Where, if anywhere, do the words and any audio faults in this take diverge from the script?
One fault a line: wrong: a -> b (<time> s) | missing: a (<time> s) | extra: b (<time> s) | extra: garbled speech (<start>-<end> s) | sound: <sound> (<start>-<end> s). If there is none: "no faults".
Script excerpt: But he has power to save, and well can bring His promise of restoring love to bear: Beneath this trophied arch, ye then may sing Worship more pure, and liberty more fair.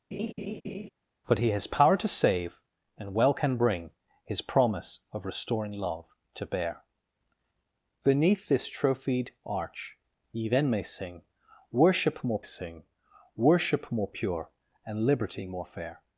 sound: laugh (0.1-0.9 s)
extra: sing Worship more (12.4 s)